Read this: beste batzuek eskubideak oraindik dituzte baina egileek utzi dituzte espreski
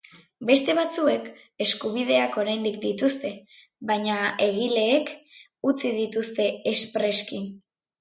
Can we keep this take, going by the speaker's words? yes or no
yes